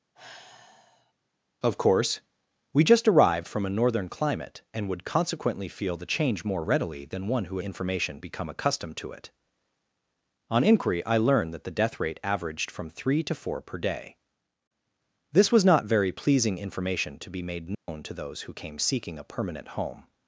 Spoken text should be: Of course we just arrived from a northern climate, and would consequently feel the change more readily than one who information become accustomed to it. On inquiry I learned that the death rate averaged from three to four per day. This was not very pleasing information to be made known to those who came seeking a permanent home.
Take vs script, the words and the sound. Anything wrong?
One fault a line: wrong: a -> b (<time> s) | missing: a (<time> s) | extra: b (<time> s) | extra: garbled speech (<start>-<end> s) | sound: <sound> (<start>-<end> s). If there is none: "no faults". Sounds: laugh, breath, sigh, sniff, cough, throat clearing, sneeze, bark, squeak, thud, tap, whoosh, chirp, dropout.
sound: sigh (0.1-1.1 s)
sound: dropout (17.7-17.9 s)